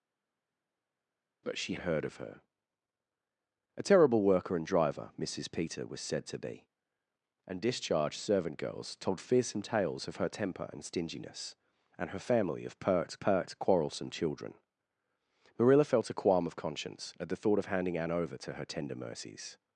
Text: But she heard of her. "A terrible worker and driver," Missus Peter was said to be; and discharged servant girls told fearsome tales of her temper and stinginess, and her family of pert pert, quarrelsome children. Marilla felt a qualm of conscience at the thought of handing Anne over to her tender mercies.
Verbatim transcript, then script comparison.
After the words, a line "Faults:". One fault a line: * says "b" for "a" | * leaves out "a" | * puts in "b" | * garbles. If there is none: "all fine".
But she heard of her. "A terrible worker and driver," Missus Peter was said to be; and discharged servant girls told fearsome tales of her temper and stinginess, and her family of pert pert, quarrelsome children. Marilla felt a qualm of conscience at the thought of handing Anne over to her tender mercies.
Faults:
all fine